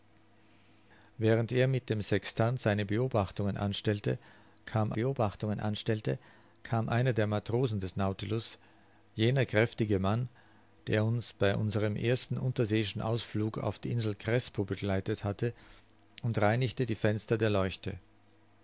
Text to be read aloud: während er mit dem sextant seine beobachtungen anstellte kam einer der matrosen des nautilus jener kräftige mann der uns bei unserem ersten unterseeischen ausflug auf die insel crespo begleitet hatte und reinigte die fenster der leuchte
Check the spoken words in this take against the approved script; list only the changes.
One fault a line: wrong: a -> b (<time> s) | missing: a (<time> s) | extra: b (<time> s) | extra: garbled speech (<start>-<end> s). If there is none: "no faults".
extra: beobachtungen anstellte kam (4.9 s)